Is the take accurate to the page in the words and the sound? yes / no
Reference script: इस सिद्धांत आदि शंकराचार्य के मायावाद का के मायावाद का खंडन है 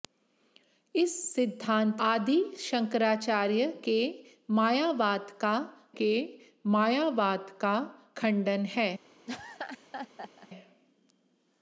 no